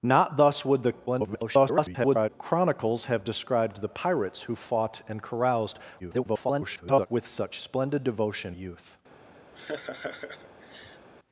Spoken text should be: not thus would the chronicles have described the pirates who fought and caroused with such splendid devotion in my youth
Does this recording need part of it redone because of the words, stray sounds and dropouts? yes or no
yes